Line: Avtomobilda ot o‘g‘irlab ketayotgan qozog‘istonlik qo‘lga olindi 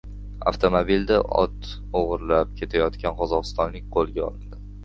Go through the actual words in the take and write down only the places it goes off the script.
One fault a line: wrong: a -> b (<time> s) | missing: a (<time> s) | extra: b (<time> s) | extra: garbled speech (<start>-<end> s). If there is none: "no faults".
no faults